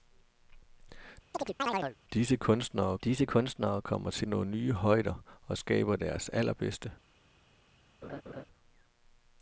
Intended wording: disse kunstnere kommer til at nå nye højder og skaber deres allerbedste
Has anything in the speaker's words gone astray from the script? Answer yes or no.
yes